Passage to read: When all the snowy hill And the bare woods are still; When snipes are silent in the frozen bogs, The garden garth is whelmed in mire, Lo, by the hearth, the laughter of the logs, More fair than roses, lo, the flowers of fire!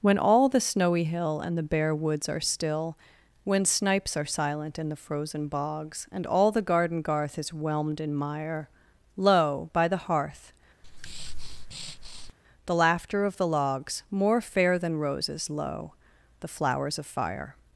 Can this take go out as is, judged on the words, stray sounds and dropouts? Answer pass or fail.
fail